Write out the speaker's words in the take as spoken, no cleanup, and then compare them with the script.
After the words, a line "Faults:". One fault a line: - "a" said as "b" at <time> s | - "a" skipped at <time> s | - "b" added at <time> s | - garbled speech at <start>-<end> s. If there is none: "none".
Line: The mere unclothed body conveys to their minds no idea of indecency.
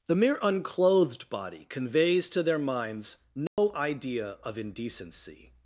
The mere unclothed body conveys to their minds no idea of indecency.
Faults:
none